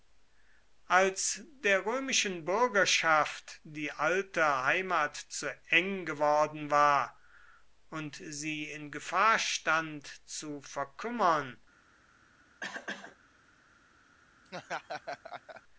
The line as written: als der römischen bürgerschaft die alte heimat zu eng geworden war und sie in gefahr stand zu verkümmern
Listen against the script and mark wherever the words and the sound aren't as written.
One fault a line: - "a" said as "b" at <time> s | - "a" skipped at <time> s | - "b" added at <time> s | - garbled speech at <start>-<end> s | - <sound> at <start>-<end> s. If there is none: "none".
- cough at 12.6-13.2 s
- laugh at 14.5-15.6 s